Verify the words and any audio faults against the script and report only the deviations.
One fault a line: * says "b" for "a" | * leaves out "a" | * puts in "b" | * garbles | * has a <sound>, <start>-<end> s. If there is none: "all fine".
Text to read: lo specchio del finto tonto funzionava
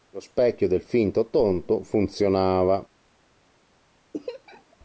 * has a laugh, 4.1-4.8 s